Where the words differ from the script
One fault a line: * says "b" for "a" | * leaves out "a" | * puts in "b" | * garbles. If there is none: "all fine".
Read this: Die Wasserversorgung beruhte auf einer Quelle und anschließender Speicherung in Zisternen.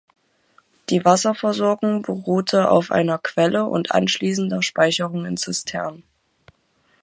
all fine